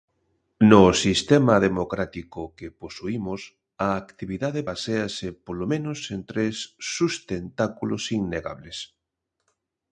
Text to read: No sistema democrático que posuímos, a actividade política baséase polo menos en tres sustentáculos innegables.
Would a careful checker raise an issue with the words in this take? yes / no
yes